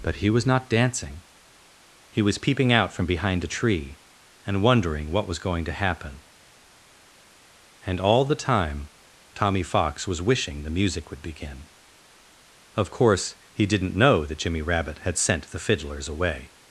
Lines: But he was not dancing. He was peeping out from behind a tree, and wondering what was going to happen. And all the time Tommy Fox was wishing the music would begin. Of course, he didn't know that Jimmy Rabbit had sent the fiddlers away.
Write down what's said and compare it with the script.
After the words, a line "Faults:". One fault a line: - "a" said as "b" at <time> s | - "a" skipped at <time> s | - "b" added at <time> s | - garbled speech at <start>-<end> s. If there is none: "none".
But he was not dancing. He was peeping out from behind a tree, and wondering what was going to happen. And all the time Tommy Fox was wishing the music would begin. Of course, he didn't know that Jimmy Rabbit had sent the fiddlers away.
Faults:
none